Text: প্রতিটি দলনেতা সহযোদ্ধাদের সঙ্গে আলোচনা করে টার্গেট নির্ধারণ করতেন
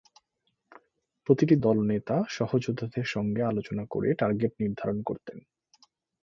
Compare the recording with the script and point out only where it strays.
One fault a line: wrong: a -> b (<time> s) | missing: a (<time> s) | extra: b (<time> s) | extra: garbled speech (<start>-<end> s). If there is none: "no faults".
no faults